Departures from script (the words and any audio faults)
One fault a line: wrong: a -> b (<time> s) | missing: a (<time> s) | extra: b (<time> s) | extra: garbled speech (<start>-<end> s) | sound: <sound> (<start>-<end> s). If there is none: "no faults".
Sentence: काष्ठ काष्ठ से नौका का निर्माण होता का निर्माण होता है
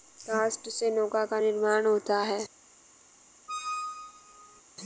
missing: काष्ठ (0.7 s)
missing: का निर्माण होता (2.2 s)
sound: squeak (3.5-4.6 s)